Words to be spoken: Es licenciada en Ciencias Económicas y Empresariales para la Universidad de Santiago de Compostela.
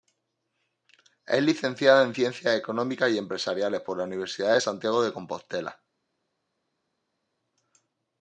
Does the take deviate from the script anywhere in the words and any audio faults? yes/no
yes